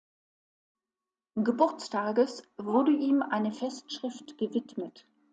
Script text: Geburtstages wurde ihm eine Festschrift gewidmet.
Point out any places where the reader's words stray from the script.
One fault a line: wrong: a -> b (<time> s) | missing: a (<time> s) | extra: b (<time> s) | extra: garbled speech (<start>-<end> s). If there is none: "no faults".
no faults